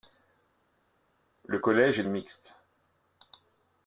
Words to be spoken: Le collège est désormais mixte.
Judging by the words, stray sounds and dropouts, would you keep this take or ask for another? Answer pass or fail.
fail